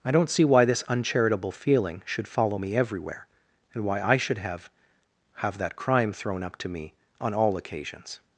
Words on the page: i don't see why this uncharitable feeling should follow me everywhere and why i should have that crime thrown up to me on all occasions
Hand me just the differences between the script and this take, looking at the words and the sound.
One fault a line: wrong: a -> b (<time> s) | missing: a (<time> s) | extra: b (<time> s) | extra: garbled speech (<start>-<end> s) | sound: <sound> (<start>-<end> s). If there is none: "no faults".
extra: have (5.3 s)